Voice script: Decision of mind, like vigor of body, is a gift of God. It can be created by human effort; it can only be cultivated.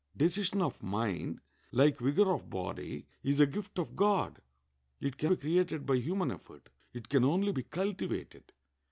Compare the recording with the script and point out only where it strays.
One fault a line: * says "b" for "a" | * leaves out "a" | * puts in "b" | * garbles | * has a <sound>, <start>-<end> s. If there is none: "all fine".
all fine